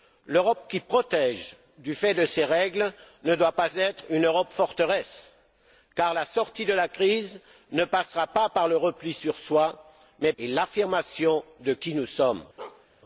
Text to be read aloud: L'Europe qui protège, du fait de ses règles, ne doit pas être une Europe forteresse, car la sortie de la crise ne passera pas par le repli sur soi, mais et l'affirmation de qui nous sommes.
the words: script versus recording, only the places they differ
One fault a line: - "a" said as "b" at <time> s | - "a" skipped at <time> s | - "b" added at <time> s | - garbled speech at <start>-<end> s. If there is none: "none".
none